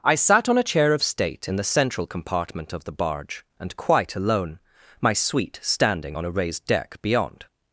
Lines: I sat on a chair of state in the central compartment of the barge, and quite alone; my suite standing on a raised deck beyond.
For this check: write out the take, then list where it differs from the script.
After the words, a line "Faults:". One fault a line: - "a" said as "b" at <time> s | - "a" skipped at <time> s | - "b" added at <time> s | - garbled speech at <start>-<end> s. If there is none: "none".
I sat on a chair of state in the central compartment of the barge, and quite alone; my suite standing on a raised deck beyond.
Faults:
none